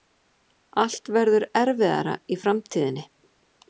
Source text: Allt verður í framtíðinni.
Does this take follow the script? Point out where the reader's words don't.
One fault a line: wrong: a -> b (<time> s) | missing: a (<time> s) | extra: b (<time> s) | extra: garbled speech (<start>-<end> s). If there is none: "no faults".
extra: erfiðara (1.6 s)